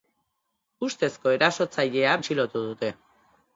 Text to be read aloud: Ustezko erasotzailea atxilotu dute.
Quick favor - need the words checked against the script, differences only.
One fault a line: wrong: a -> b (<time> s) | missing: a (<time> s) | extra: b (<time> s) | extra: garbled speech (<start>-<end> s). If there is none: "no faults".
no faults